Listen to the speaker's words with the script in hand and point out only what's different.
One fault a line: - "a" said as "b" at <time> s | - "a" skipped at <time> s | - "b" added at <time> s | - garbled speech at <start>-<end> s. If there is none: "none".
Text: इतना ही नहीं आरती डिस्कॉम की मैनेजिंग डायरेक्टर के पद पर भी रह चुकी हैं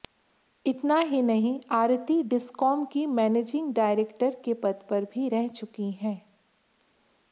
none